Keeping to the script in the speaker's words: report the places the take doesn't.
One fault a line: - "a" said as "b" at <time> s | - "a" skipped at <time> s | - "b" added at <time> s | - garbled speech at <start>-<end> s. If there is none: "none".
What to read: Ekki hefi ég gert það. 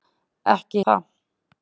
- "hefi ég gert" skipped at 0.8 s